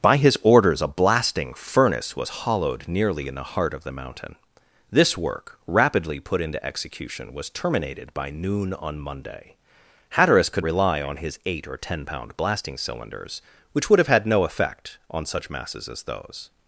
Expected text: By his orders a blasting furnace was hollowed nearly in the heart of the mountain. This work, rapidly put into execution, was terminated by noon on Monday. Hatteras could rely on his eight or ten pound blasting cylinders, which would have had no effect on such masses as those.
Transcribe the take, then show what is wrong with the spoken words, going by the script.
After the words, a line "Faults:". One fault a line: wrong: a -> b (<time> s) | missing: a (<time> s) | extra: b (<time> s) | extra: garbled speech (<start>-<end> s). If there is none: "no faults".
By his orders a blasting furnace was hollowed nearly in the heart of the mountain. This work, rapidly put into execution, was terminated by noon on Monday. Hatteras could rely on his eight or ten pound blasting cylinders, which would have had no effect on such masses as those.
Faults:
no faults